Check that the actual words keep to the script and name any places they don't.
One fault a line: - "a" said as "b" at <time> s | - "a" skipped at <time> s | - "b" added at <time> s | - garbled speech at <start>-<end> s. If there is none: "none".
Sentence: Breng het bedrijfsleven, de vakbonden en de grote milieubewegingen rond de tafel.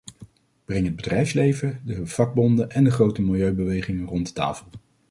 none